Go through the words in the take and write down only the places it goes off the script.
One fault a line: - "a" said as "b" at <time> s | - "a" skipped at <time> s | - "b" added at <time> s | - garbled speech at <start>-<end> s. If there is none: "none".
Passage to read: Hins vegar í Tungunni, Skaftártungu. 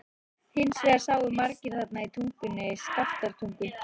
- "sáu margir þarna" added at 1.0 s